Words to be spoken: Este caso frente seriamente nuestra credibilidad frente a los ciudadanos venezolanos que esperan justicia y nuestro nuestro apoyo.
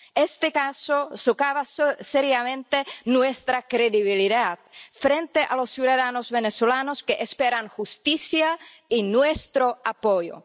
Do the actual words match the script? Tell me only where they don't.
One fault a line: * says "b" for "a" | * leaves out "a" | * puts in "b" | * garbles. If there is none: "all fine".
* says "socava" for "frente"
* leaves out "nuestro"